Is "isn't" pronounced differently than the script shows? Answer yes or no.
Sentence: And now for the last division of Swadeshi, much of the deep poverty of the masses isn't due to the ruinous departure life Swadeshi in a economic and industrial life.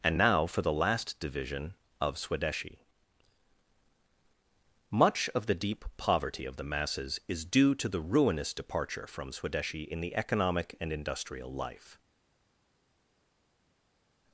yes